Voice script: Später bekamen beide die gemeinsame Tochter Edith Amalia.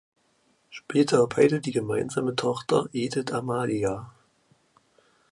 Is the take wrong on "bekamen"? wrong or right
wrong